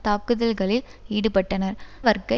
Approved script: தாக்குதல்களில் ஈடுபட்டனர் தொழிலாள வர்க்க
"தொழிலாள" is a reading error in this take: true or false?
true